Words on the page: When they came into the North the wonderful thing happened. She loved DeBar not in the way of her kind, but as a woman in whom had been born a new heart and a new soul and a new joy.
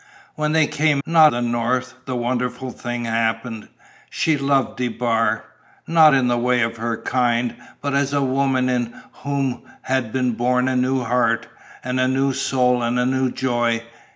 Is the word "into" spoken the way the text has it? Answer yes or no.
no